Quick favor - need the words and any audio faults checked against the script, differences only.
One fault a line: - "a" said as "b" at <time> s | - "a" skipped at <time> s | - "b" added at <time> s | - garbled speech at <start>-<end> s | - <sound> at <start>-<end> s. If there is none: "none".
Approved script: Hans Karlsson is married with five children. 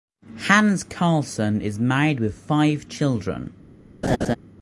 - laugh at 4.0-4.4 s